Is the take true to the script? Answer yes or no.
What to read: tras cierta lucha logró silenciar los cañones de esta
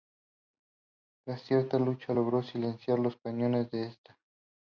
yes